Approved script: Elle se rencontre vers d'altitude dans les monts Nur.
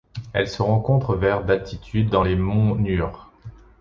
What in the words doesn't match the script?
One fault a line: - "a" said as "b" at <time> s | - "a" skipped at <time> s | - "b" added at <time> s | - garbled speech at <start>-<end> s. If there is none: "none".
none